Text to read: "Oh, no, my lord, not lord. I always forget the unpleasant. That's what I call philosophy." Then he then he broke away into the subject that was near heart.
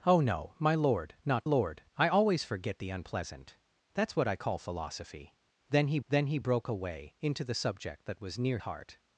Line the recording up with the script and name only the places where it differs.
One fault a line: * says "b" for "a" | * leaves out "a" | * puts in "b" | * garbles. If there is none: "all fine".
all fine